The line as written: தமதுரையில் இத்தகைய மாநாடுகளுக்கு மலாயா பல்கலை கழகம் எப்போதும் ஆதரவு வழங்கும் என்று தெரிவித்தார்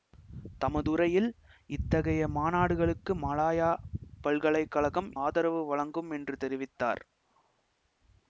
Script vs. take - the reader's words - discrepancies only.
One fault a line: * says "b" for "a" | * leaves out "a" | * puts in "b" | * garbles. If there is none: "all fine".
* leaves out "எப்போதும்"